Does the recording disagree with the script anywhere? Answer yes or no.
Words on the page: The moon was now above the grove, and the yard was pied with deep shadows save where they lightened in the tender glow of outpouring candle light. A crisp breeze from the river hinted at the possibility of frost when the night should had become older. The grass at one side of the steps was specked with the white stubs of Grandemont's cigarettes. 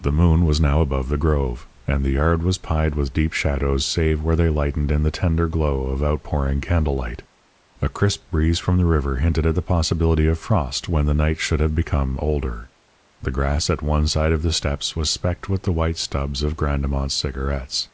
yes